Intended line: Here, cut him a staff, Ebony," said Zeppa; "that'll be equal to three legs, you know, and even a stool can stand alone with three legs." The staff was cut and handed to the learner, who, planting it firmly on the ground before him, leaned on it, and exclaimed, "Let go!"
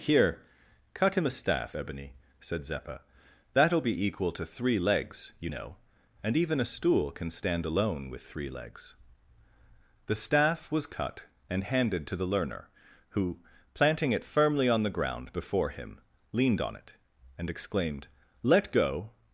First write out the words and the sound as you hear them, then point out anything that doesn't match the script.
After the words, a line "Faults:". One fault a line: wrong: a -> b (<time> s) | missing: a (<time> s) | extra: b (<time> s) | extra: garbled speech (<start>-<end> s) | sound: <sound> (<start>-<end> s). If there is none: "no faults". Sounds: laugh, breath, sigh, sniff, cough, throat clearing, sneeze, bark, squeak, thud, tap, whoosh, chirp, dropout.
Here, cut him a staff, Ebony," said Zeppa; "that'll be equal to three legs, you know, and even a stool can stand alone with three legs." The staff was cut and handed to the learner, who, planting it firmly on the ground before him, leaned on it, and exclaimed, "Let go!"
Faults:
no faults